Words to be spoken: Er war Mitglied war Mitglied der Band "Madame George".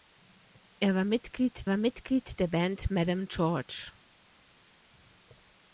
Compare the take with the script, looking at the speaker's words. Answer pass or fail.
pass